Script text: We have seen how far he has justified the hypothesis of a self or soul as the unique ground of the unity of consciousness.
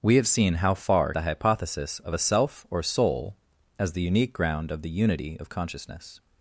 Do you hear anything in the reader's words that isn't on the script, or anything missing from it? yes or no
yes